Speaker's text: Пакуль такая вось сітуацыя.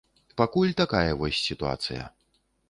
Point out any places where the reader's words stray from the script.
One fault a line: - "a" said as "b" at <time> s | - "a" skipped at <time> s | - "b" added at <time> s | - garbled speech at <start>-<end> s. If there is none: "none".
none